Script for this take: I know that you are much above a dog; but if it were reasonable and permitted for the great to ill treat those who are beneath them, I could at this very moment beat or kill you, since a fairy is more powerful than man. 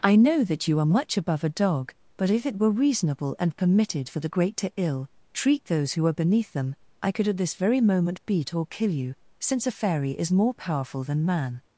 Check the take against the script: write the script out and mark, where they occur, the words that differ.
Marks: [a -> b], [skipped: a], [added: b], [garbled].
I know that you are much above a dog; but if it were reasonable and permitted for the great to ill treat those who are beneath them, I could at this very moment beat or kill you, since a fairy is more powerful than man.